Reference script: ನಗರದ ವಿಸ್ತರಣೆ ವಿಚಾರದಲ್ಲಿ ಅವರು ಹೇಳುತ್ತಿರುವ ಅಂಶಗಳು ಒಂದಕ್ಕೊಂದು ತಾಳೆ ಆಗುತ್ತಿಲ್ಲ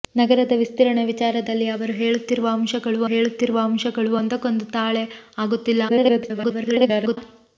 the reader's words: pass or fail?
fail